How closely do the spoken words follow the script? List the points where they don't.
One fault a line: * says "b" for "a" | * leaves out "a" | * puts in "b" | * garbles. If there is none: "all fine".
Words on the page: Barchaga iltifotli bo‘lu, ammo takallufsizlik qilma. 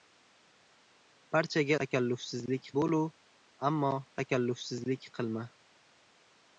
* says "takallufsizlik" for "iltifotli"